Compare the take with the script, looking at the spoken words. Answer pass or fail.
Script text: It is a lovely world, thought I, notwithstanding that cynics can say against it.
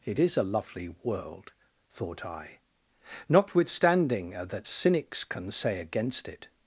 pass